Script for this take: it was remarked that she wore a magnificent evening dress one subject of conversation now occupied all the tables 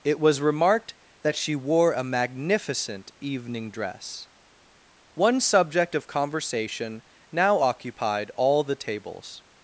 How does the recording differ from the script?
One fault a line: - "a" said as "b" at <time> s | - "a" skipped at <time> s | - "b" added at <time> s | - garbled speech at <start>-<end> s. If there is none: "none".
none